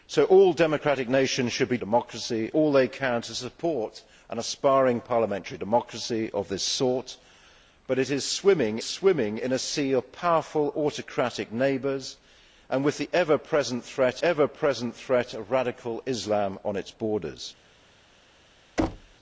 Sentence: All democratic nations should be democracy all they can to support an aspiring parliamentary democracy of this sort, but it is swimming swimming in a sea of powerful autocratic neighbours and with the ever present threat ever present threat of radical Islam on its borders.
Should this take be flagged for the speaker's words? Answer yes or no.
no